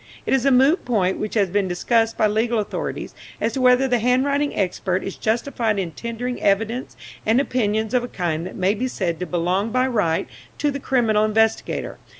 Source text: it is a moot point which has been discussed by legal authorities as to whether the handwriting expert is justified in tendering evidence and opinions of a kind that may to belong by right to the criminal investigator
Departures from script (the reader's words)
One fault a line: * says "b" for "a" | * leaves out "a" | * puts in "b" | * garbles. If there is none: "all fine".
* puts in "be said"